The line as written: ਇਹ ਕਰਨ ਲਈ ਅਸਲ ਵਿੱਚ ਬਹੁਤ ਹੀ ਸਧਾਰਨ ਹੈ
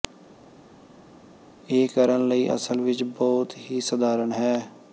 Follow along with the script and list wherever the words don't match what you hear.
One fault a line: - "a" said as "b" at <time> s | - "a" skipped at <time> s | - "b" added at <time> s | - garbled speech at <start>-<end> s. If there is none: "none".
none